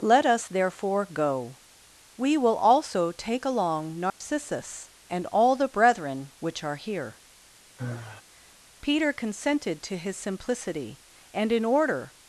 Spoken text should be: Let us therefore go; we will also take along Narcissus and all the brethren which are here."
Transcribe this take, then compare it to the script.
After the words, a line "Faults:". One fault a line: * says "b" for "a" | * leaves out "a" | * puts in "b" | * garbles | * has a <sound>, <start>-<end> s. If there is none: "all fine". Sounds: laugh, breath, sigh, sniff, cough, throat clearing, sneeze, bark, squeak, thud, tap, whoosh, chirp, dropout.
Let us therefore go; we will also take along Narcissus and all the brethren which are here." Peter consented to his simplicity, and in order
Faults:
* has a dropout, 4.1-4.2 s
* has a sigh, 7.8-8.2 s
* puts in "Peter consented to his simplicity and in order"